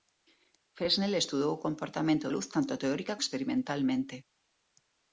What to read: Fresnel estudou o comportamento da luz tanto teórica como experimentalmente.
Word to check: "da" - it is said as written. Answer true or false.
false